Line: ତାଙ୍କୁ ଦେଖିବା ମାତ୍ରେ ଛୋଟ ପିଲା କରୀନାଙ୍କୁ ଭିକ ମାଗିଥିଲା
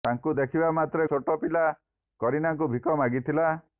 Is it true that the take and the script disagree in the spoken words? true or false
false